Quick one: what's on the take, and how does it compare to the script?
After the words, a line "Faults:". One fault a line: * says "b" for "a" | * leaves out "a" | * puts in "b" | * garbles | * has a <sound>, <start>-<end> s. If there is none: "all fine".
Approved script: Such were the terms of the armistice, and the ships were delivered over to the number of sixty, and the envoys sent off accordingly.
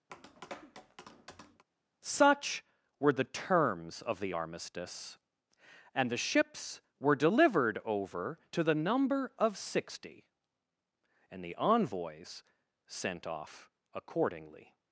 Such were the terms of the armistice, and the ships were delivered over to the number of sixty, and the envoys sent off accordingly.
Faults:
* has a tap, 0.1-1.6 s